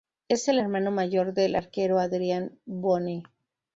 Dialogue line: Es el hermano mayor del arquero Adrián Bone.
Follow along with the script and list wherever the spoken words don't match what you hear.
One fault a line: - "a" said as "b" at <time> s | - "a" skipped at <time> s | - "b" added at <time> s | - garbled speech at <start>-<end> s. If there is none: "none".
none